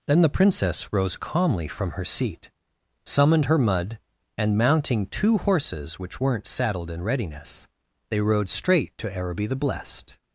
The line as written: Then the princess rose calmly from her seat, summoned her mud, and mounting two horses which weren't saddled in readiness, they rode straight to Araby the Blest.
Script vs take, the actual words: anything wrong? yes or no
no